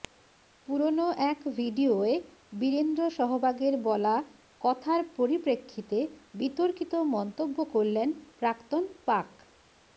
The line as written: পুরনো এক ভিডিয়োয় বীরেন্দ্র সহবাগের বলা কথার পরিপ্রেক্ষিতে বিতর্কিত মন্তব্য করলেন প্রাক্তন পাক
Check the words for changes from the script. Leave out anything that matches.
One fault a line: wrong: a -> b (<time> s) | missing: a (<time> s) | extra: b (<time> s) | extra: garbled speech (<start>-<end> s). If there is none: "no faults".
no faults